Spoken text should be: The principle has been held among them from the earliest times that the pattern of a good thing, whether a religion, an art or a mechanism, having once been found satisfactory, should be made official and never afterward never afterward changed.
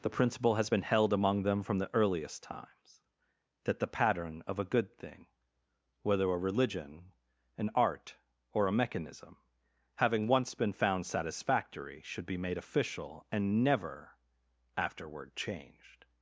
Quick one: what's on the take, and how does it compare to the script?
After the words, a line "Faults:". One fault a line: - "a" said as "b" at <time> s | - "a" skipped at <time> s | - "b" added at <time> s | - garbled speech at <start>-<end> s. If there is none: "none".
The principle has been held among them from the earliest times that the pattern of a good thing, whether a religion, an art or a mechanism, having once been found satisfactory, should be made official and never afterward changed.
Faults:
- "never afterward" skipped at 15.4 s